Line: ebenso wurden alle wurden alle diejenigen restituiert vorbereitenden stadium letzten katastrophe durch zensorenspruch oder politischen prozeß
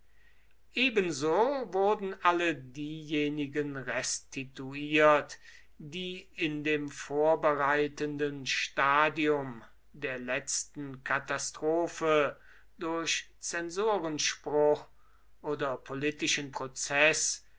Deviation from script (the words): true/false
true